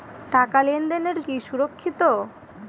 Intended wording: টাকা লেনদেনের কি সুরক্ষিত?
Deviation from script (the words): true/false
false